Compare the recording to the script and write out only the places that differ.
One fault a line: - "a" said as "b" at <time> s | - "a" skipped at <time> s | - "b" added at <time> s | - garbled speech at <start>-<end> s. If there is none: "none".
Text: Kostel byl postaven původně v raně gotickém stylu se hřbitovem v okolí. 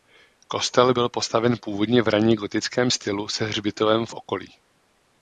none